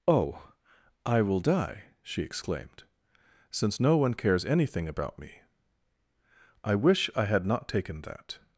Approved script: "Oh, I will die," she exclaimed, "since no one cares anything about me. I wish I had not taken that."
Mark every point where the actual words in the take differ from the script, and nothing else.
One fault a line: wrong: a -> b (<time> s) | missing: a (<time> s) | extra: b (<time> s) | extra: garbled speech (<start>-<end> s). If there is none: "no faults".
no faults